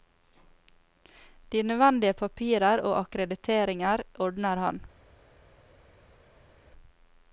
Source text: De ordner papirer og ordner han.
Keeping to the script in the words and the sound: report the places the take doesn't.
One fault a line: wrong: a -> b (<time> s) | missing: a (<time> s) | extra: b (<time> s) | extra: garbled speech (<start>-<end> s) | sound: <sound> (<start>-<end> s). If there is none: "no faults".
wrong: ordner -> nødvendige (1.6 s)
extra: akkrediteringer (3.0 s)